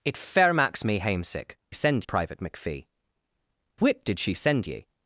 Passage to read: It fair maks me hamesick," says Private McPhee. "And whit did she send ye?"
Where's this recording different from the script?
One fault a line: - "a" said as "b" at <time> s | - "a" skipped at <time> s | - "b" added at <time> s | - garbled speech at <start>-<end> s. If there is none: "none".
- "says" said as "send" at 1.7 s
- "And" skipped at 2.9 s